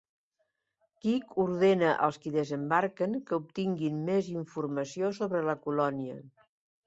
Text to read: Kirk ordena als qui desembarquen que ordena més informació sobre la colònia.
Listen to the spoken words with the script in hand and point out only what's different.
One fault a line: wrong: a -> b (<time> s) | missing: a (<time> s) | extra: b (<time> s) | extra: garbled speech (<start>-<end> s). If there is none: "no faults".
wrong: ordena -> obtinguin (3.4 s)